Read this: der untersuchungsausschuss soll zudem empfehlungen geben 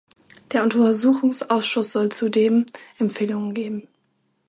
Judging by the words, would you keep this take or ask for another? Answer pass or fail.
pass